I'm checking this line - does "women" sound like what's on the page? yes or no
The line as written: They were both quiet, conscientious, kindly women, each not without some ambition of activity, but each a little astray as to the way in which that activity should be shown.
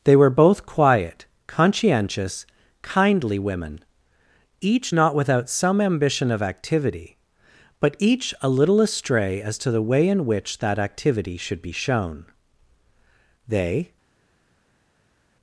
yes